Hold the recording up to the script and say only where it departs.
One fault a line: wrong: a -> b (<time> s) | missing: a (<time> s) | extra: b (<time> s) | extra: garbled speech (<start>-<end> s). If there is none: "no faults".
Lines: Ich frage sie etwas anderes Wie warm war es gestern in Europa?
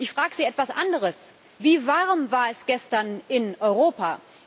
no faults